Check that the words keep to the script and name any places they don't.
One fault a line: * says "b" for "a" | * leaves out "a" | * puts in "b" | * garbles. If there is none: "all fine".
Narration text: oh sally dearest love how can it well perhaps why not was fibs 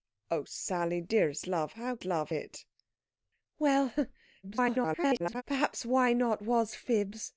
* says "love" for "can"
* garbles